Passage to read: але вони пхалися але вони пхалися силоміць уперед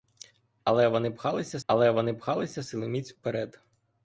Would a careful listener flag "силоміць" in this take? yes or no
no